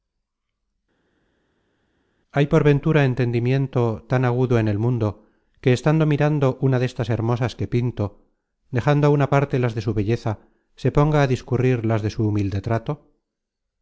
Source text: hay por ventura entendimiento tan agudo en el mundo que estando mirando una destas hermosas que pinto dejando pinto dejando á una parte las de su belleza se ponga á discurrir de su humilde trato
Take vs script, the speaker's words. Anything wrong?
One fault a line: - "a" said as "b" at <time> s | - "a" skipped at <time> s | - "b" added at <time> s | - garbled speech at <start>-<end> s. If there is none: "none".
- "pinto dejando" skipped at 9.0 s
- "las" added at 11.9 s